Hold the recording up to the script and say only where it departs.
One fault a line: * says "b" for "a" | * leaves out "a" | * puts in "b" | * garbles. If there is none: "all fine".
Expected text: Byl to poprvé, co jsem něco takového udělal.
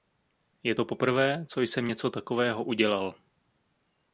* says "Je" for "Byl"